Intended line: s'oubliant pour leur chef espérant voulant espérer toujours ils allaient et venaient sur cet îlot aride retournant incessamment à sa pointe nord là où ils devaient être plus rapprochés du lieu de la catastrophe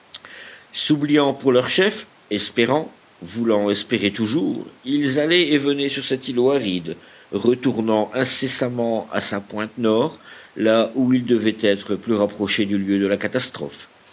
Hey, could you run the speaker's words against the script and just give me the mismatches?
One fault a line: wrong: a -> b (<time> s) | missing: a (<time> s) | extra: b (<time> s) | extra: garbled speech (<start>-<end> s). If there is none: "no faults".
no faults